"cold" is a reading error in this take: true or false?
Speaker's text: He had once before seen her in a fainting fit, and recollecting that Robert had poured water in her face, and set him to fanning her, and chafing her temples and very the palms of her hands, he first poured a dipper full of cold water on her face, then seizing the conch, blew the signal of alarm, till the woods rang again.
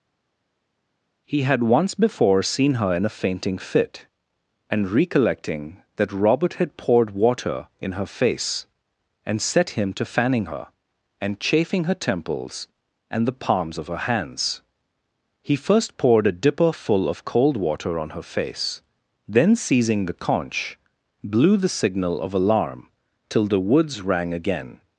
false